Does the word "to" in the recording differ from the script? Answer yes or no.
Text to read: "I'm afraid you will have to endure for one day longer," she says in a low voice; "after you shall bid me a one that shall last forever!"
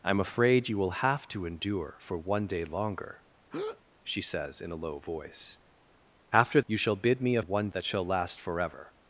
no